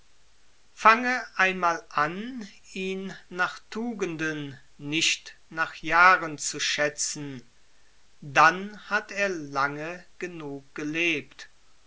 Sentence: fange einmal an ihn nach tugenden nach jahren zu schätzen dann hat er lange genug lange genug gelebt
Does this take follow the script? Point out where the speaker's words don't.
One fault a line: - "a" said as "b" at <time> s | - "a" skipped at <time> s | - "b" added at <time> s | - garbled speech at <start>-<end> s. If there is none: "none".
- "nicht" added at 4.8 s
- "lange genug" skipped at 10.7 s